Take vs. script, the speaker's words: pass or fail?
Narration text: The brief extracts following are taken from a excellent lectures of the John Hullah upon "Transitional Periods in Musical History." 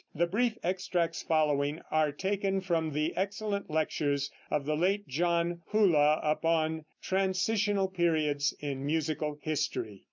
fail